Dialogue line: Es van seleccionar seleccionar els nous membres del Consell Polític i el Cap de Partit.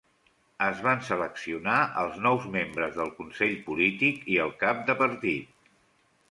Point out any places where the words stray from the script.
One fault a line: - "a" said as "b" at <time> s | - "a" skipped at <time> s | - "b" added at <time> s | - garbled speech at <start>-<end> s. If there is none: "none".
- "seleccionar" skipped at 1.8 s